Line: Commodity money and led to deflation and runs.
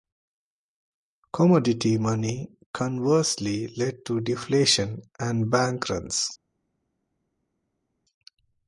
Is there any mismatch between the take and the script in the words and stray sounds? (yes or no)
yes